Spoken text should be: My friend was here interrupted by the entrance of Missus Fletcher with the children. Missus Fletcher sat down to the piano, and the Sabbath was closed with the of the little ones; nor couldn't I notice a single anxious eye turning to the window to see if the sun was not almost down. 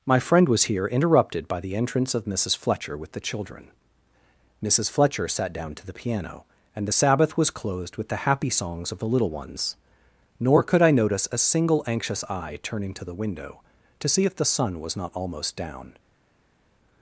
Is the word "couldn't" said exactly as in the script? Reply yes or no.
no